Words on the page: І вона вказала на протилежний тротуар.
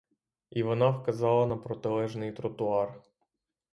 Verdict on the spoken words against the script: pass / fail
pass